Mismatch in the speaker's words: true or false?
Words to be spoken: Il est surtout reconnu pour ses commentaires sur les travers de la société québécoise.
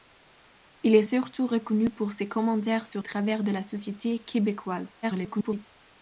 true